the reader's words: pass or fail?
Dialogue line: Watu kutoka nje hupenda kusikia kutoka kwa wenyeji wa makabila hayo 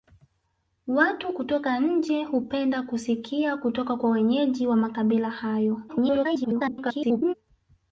fail